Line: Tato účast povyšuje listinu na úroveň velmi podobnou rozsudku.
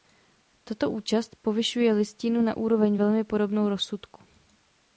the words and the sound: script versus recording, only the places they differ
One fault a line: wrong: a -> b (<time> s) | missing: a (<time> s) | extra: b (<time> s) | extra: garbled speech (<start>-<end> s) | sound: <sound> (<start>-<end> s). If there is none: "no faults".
no faults